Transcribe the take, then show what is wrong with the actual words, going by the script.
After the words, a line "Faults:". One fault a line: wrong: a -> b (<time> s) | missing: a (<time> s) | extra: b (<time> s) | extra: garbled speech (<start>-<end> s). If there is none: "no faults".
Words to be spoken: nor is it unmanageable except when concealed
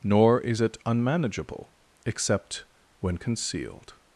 nor is it unmanageable except when concealed
Faults:
no faults